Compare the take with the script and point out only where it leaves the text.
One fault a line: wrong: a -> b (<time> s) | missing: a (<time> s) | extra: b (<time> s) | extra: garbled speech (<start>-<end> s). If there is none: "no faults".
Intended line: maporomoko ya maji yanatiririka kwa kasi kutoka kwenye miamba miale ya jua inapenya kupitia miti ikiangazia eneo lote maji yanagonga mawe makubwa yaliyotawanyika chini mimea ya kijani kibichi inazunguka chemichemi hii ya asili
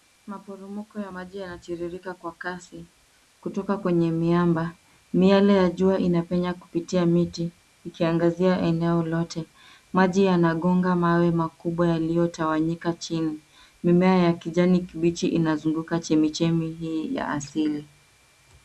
no faults